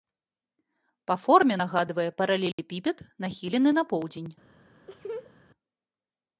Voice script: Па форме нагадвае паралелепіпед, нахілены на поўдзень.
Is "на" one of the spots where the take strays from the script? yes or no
no